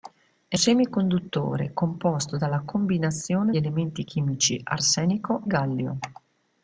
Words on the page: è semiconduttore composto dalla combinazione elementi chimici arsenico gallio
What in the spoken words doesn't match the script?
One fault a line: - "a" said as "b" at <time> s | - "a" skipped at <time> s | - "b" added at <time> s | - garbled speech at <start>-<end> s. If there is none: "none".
none